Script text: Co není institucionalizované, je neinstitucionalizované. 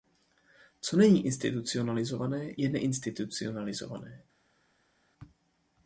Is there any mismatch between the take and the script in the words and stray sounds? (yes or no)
no